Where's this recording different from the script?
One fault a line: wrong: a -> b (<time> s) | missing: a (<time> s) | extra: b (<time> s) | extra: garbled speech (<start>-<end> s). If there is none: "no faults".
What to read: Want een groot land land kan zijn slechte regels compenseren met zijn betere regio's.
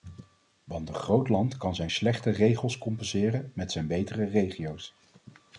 missing: land (1.6 s)